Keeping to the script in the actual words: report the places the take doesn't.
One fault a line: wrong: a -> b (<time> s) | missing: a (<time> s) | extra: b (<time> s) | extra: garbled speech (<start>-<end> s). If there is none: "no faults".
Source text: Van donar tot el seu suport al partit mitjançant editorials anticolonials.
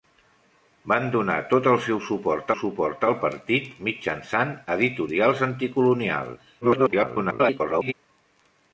extra: suport (2.6 s)
extra: garbled speech (6.6-7.9 s)